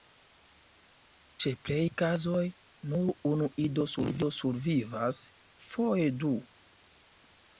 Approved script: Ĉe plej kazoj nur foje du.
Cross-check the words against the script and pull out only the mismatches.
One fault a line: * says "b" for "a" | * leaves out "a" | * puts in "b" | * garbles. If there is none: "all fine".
* puts in "unu ido survivas"